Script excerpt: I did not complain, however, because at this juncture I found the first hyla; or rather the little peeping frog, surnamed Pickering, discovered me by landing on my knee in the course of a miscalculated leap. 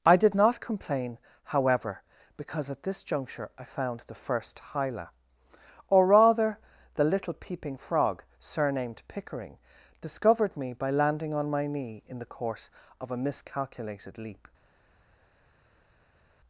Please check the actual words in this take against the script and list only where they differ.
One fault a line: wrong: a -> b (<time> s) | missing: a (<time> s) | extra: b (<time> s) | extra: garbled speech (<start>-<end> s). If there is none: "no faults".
no faults